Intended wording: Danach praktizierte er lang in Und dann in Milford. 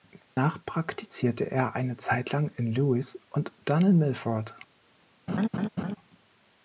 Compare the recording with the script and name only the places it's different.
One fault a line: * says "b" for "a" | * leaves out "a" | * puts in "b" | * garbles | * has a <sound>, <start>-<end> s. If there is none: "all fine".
* has a dropout, 0.2-0.4 s
* puts in "eine Zeit"
* puts in "Lewes"
* has a laugh, 5.3-6.0 s